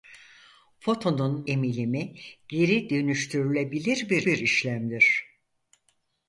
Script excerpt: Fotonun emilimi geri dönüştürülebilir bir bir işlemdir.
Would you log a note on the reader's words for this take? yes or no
no